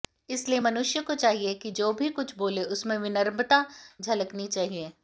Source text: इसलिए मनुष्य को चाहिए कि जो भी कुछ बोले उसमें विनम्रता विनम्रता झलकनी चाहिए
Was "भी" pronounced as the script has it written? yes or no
yes